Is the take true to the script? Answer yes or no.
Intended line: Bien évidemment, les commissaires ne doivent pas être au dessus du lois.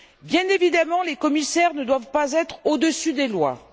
no